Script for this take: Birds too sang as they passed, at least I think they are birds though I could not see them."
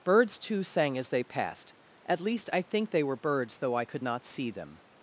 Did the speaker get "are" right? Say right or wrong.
wrong